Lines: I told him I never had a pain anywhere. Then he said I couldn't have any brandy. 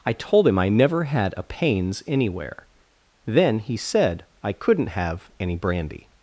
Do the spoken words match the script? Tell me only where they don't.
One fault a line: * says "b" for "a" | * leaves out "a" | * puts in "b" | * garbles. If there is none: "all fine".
* says "pains" for "pain"